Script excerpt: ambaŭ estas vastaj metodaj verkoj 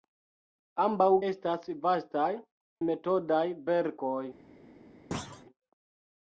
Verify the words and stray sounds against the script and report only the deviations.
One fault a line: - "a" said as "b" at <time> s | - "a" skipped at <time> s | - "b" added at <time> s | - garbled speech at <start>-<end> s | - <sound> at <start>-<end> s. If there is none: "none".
- thud at 5.1-5.4 s